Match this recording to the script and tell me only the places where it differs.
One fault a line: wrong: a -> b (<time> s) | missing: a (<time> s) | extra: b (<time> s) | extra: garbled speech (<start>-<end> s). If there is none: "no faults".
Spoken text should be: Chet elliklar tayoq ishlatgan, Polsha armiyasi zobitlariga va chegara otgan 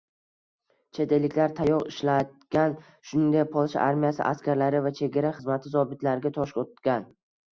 extra: shuningdek (3.1 s)
wrong: zobitlariga -> askarlari (4.3 s)
extra: xizmati zobitlariga tosh (5.4 s)